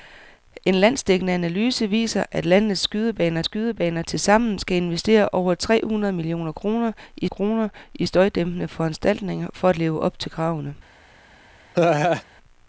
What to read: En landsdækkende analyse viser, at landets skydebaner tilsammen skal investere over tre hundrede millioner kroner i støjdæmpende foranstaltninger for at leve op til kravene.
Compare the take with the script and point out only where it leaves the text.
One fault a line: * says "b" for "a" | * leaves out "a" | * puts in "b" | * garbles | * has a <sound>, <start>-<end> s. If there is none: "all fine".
* puts in "skydebaner"
* puts in "kroner i"
* has a laugh, 11.7-12.2 s